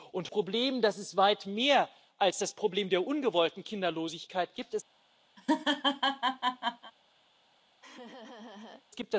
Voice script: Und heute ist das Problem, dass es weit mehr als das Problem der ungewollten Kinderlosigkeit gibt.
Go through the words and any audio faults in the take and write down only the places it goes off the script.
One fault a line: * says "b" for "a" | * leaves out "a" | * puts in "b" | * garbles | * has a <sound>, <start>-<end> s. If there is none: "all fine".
* leaves out "heute ist das"
* has a laugh, 5.4-6.9 s
* has a laugh, 7.8-8.8 s